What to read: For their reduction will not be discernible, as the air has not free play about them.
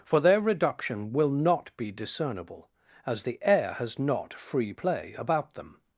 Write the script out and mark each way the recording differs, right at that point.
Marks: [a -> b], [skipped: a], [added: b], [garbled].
For their reduction will not be discernible, as the air has not free play about them.